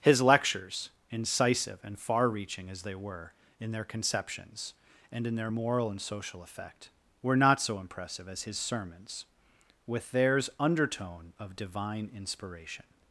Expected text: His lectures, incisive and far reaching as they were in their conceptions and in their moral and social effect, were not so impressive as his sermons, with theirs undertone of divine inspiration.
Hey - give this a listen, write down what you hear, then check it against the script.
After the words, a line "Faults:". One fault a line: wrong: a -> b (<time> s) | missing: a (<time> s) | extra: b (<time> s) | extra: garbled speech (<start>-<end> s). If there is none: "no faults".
His lectures, incisive and far reaching as they were in their conceptions and in their moral and social effect, were not so impressive as his sermons, with theirs undertone of divine inspiration.
Faults:
no faults